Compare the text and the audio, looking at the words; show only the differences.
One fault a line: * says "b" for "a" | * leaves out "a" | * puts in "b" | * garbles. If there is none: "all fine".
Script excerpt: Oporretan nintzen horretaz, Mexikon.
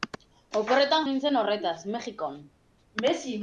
all fine